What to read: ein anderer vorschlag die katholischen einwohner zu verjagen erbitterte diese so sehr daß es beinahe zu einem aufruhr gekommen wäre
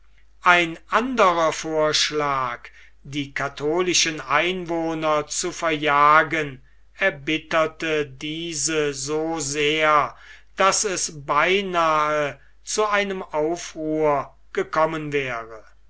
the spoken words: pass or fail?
pass